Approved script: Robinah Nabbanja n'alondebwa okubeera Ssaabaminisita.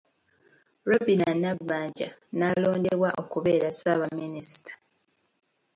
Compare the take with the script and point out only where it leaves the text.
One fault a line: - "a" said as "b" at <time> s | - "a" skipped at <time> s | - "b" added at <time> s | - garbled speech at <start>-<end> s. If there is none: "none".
none